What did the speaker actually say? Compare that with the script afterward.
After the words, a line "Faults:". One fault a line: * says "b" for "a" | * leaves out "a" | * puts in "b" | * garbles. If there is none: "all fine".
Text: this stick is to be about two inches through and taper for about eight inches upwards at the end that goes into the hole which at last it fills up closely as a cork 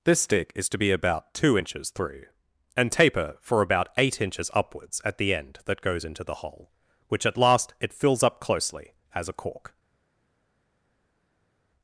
this stick is to be about two inches through and taper for about eight inches upwards at the end that goes into the hole which at last it fills up closely as a cork
Faults:
all fine